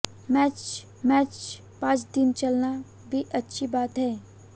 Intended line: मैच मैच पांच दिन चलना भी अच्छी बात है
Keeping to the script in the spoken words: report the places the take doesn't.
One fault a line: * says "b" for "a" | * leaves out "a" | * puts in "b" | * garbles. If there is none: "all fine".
all fine